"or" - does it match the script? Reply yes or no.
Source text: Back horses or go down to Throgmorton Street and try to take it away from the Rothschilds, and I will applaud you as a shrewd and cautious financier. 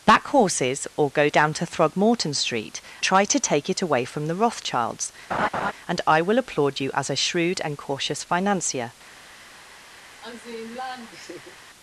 yes